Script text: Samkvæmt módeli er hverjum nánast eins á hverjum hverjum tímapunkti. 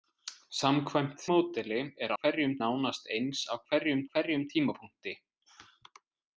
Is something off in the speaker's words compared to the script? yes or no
no